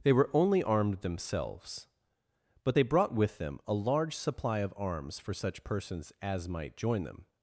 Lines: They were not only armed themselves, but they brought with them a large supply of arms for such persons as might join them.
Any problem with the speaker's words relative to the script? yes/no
yes